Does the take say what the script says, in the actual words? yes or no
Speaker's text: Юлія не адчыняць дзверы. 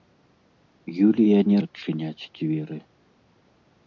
yes